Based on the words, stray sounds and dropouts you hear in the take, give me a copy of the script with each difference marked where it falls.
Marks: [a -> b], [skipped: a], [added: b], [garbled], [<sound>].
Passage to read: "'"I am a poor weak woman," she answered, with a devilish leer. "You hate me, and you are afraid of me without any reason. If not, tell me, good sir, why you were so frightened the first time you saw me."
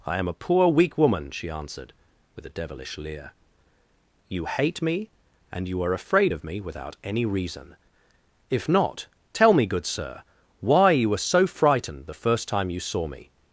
"'"I am a poor weak woman," she answered, with a devilish leer. "You hate me, and you are afraid of me without any reason. If not, tell me, good sir, why you were so frightened the first time you saw me."